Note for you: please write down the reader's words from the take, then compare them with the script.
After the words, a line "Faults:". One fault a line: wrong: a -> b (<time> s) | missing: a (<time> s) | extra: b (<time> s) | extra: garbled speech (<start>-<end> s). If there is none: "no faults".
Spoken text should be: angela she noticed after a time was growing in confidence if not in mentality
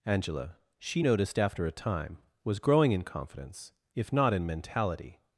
angela she noticed after a time was growing in confidence if not in mentality
Faults:
no faults